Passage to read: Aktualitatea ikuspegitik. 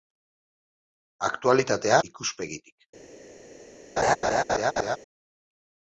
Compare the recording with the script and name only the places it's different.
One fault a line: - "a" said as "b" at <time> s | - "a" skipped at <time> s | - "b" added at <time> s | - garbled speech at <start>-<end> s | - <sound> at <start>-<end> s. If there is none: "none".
- laugh at 4.0-5.0 s